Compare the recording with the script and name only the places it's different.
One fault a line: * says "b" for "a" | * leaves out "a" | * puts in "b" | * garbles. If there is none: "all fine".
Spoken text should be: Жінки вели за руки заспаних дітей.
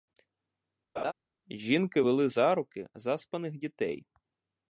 all fine